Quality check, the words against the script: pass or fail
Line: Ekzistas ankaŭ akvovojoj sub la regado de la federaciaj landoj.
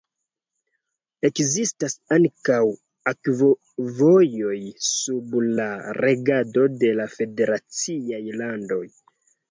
pass